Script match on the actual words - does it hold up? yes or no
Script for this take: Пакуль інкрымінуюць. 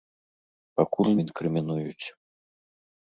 yes